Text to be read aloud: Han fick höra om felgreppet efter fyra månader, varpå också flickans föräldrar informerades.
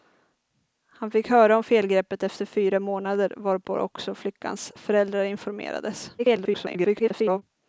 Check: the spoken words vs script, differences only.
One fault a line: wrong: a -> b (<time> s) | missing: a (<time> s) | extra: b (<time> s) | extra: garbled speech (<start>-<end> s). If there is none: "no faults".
extra: garbled speech (6.2-7.4 s)